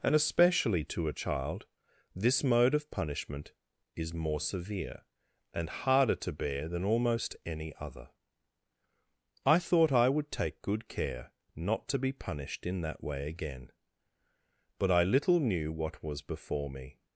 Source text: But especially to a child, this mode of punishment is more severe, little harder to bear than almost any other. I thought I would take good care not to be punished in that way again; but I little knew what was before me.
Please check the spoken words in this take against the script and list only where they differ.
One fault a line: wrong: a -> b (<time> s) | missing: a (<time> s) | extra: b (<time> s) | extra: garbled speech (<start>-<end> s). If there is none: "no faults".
wrong: But -> And (0.0 s)
wrong: little -> and (5.5 s)